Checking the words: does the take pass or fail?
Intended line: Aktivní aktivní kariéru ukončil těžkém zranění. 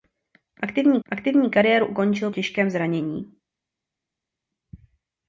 pass